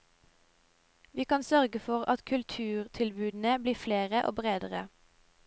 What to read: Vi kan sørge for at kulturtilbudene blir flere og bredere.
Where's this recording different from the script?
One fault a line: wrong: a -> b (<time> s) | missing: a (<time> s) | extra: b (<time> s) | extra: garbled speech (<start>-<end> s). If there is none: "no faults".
no faults